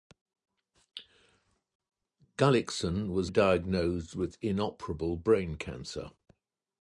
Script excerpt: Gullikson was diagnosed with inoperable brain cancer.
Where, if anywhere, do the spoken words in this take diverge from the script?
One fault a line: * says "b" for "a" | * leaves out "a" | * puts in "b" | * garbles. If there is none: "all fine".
all fine